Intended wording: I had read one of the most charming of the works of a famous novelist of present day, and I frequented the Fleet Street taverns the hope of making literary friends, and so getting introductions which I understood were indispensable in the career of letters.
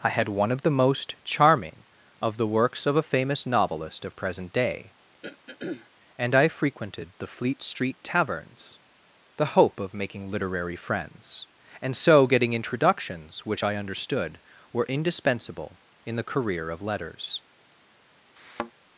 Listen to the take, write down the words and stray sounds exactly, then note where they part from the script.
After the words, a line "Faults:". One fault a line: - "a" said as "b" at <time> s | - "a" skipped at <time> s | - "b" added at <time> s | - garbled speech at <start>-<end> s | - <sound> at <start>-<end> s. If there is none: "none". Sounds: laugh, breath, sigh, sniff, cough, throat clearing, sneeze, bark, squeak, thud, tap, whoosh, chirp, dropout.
I had one of the most charming of the works of a famous novelist of present day, and I frequented the Fleet Street taverns the hope of making literary friends, and so getting introductions which I understood were indispensable in the career of letters.
Faults:
- "read" skipped at 0.3 s
- throat clearing at 5.2-5.9 s
- thud at 18.4-18.7 s